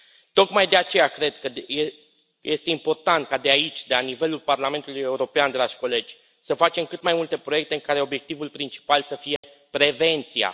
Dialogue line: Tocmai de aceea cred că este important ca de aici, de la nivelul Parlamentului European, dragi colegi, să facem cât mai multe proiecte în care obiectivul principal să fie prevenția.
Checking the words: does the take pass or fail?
pass